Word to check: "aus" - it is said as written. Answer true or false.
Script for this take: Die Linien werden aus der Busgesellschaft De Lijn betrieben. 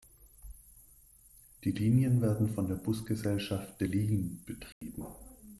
false